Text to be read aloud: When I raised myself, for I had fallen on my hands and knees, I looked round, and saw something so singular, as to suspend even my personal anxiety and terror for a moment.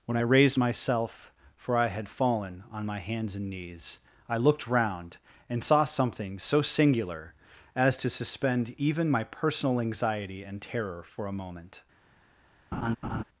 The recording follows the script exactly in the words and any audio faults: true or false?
false